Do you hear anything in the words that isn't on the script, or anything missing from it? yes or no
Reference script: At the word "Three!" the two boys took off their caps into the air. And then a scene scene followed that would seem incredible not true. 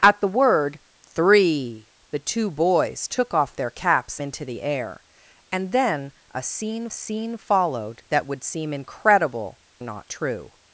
no